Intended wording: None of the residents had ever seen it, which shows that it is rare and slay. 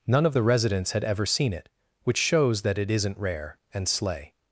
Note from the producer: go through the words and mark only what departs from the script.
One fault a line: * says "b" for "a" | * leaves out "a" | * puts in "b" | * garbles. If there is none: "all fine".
* says "isn't" for "is"